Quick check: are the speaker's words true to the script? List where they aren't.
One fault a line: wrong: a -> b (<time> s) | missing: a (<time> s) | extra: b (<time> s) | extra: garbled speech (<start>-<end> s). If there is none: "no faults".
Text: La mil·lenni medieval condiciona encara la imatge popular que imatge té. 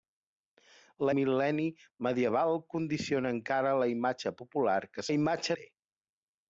no faults